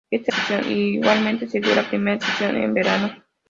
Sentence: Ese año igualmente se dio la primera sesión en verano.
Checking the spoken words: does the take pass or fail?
fail